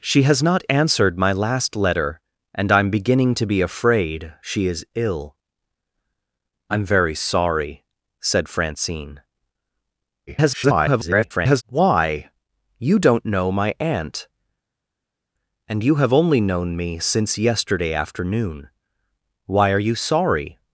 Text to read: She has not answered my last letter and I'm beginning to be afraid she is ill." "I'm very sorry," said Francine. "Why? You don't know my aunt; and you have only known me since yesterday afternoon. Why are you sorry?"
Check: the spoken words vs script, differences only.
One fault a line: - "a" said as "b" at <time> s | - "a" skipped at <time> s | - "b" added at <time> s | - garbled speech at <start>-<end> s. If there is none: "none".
- garbled speech at 10.3-11.6 s